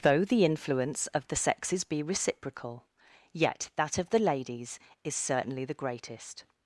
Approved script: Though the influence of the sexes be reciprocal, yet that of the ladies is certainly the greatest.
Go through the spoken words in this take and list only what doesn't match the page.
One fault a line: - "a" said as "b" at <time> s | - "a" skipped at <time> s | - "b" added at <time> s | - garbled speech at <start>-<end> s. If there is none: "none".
none